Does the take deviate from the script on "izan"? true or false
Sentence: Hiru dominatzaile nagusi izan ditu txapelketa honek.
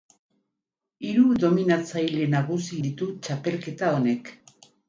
true